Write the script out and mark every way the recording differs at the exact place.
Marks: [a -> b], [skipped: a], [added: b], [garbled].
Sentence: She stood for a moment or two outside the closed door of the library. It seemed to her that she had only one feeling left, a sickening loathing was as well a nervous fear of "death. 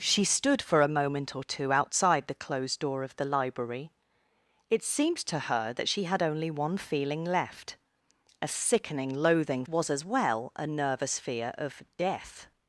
She stood for a moment or two outside the closed door of the library. It seemed to her that she had only one feeling left, a sickening loathing was as well a nervous fear of "death.